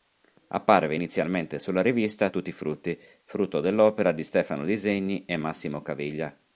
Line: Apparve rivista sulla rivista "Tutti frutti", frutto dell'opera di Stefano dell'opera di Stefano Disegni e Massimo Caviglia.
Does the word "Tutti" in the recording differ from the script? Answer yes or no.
no